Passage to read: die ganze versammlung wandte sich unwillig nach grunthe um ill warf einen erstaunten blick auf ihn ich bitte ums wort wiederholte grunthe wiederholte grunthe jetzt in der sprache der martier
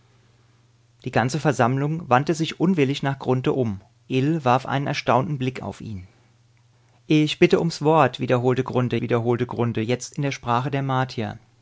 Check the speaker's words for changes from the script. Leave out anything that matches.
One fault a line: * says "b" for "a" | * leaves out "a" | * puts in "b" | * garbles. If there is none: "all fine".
all fine